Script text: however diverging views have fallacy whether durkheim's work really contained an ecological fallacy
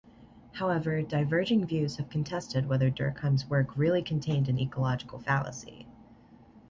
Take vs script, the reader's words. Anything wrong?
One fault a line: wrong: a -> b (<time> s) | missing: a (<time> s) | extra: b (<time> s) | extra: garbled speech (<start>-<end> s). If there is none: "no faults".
wrong: fallacy -> contested (2.1 s)